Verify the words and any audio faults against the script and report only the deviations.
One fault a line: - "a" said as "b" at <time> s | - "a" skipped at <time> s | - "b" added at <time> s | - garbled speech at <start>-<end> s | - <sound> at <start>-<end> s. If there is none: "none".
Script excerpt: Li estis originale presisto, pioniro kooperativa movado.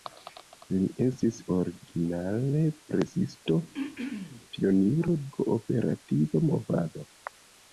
- throat clearing at 3.7-4.4 s